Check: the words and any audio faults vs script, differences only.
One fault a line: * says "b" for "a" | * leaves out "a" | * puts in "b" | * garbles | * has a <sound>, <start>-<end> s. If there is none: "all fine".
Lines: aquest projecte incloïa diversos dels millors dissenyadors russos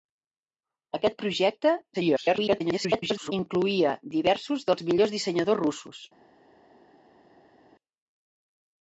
* garbles